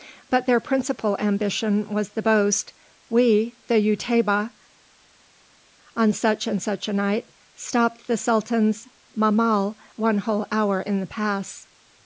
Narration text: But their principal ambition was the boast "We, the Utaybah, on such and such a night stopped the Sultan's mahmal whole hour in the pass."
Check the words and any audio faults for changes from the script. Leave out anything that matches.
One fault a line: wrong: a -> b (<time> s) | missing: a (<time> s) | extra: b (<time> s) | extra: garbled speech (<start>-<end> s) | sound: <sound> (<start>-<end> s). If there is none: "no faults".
extra: one (9.9 s)